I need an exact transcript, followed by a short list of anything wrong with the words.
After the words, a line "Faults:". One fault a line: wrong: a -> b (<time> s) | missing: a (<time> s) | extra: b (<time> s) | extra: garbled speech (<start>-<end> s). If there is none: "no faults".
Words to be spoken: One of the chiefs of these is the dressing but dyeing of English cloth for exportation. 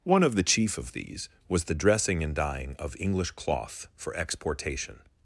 One of the chief of these was the dressing and dyeing of English cloth for exportation.
Faults:
wrong: chiefs -> chief (0.4 s)
wrong: is -> was (1.5 s)
wrong: but -> and (2.2 s)